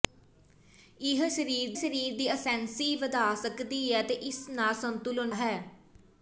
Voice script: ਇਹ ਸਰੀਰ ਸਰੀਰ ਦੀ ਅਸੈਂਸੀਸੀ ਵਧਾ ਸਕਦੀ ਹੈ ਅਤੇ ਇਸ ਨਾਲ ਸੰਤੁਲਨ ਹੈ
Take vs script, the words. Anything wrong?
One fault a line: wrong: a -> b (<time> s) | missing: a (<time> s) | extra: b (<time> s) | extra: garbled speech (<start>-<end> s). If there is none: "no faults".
no faults